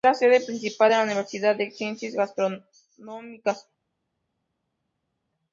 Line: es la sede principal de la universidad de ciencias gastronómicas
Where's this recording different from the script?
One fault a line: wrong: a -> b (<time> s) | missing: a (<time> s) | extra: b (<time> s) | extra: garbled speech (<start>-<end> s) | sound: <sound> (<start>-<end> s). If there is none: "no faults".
no faults